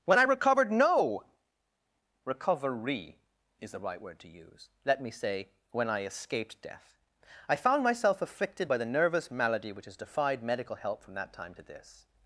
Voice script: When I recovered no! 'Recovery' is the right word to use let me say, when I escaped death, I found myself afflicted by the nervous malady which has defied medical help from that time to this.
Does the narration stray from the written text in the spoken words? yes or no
no